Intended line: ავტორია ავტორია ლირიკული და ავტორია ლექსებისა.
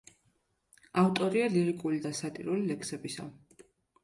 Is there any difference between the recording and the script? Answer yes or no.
yes